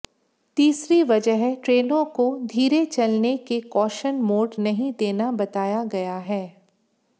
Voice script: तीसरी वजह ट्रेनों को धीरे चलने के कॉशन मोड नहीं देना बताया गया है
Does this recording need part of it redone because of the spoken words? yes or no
no